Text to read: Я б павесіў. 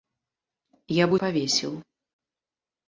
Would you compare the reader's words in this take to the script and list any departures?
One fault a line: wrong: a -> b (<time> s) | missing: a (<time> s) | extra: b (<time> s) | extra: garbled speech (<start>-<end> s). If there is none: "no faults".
no faults